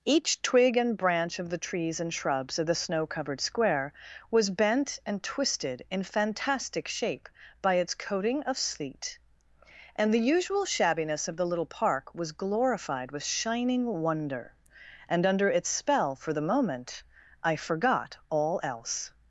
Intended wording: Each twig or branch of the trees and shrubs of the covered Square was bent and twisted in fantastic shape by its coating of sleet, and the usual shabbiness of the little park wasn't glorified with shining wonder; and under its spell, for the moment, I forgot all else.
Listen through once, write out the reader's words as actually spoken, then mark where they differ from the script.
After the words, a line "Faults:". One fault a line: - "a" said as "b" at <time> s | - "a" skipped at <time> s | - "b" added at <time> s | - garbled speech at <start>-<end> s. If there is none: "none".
Each twig and branch of the trees and shrubs of the snow covered Square was bent and twisted in fantastic shape by its coating of sleet, and the usual shabbiness of the little park was glorified with shining wonder; and under its spell, for the moment, I forgot all else.
Faults:
- "or" said as "and" at 0.8 s
- "snow" added at 2.8 s
- "wasn't" said as "was" at 12.2 s